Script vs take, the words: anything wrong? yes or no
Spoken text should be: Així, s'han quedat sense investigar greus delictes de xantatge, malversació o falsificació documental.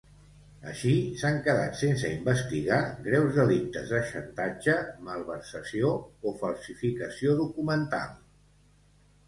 no